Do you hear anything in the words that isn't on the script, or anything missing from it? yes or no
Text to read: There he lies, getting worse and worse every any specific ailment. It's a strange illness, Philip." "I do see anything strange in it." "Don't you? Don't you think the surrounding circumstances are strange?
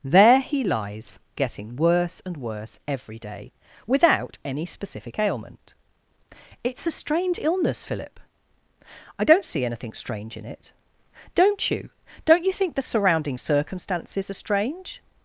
yes